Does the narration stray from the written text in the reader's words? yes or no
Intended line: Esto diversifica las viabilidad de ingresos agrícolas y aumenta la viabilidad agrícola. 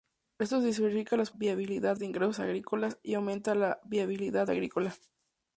no